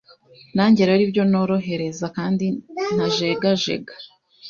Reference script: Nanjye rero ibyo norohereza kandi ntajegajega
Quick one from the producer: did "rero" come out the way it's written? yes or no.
yes